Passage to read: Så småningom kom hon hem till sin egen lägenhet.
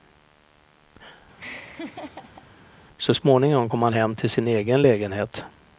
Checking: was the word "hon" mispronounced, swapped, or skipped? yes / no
yes